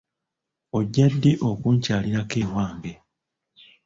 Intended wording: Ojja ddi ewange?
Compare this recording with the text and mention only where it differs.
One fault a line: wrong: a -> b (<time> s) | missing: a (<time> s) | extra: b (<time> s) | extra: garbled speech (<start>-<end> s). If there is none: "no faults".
extra: okunkyalirako (1.5 s)